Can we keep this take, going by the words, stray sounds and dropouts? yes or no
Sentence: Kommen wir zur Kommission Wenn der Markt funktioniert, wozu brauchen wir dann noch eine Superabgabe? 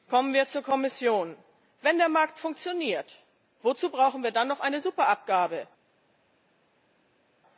yes